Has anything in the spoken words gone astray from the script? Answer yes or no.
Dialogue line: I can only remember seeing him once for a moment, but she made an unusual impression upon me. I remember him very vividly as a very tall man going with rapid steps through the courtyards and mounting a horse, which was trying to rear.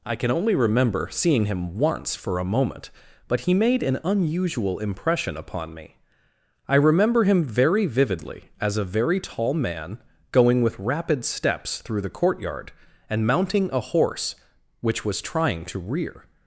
yes